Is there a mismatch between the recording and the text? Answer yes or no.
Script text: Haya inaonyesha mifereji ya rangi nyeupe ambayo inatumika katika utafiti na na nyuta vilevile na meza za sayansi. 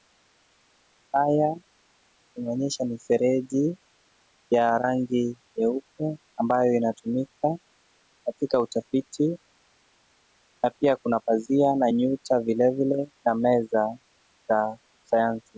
yes